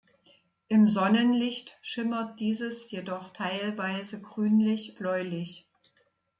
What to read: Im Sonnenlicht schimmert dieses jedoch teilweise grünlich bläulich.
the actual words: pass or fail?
pass